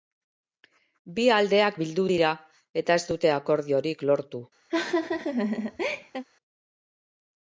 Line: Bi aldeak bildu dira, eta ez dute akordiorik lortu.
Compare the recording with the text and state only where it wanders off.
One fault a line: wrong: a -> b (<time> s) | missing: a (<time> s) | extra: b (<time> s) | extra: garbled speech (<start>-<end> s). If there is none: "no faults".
no faults